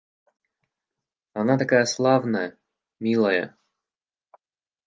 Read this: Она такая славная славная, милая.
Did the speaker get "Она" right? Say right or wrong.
right